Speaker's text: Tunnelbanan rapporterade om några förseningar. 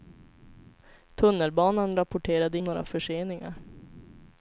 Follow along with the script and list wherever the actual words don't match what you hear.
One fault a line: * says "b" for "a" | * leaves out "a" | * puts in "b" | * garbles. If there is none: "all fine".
all fine